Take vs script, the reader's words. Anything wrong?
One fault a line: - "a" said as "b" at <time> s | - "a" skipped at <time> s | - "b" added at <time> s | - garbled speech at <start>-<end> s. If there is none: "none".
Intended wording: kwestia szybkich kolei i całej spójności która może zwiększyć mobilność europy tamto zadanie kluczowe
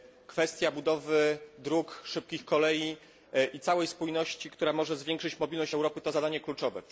- "budowy dróg" added at 0.7 s
- "tamto" said as "to" at 6.0 s